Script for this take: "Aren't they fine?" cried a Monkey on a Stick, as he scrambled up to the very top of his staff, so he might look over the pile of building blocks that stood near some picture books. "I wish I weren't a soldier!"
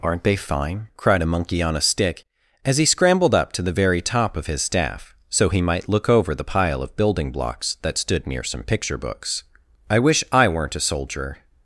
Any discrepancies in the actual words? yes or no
no